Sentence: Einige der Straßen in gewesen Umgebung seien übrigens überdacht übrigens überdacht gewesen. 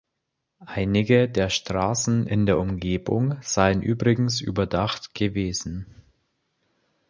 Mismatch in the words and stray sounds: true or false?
true